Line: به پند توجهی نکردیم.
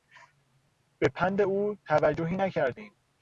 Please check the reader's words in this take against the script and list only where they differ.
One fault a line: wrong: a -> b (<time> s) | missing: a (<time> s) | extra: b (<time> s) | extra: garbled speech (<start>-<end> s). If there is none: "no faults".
extra: او (1.4 s)